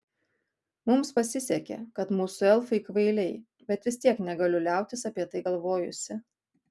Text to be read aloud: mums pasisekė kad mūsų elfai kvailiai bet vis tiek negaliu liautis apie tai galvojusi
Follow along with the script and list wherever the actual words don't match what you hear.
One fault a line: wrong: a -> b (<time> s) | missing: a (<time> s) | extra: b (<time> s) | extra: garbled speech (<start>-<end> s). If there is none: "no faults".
no faults